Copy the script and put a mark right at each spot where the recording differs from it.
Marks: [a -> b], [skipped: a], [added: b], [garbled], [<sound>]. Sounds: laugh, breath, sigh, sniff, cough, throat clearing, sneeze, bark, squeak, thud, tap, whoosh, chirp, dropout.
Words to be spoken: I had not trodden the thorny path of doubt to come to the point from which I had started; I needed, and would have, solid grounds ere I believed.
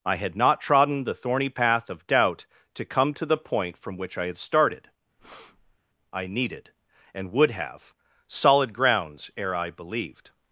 I had not trodden the thorny path of doubt to come to the point from which I had started; [breath] I needed, and would have, solid grounds ere I believed.